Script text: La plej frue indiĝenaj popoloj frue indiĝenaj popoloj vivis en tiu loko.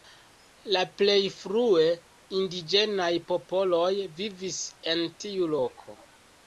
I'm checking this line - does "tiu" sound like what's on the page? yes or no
yes